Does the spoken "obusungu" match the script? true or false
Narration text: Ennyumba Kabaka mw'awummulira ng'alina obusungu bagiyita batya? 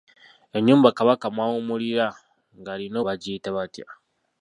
false